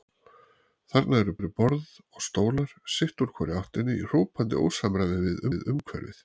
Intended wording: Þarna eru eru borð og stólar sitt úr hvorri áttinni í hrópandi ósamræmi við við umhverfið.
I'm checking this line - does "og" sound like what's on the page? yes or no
yes